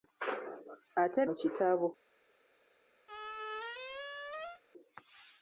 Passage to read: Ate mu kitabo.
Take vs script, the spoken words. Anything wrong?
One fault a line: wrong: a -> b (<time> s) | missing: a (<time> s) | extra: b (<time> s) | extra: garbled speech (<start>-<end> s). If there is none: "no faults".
no faults